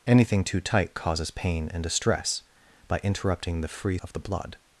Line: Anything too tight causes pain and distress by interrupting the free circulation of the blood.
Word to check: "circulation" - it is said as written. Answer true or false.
false